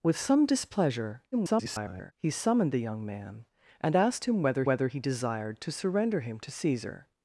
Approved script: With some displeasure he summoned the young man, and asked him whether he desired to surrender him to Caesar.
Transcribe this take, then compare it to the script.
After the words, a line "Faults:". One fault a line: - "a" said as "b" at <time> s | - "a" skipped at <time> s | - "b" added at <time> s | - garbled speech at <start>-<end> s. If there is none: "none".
With some displeasure [garbled] he summoned the young man, and asked him whether whether he desired to surrender him to Caesar.
Faults:
- garbled speech at 1.3-2.1 s
- "whether" added at 4.7 s